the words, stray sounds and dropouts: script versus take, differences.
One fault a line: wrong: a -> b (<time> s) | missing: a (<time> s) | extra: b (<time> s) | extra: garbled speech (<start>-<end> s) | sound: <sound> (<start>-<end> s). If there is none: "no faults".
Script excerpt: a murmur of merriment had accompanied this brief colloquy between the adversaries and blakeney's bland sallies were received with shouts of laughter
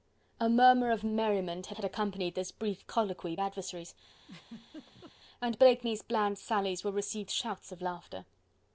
extra: had (1.7 s)
missing: between the (3.4 s)
sound: laugh (4.2-5.1 s)
missing: with (7.3 s)